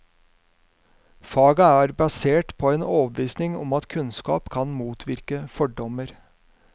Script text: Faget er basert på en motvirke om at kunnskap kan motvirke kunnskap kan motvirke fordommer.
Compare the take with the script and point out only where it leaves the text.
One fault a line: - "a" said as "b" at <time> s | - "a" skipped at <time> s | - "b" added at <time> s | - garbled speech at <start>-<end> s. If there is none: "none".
- "motvirke" said as "overbevisning" at 2.8 s
- "kunnskap kan motvirke" skipped at 5.4 s